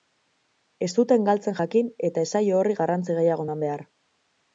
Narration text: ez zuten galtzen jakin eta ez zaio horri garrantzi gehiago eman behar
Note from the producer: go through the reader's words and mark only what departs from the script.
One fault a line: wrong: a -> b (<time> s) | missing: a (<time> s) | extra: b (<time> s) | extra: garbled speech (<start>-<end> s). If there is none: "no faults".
no faults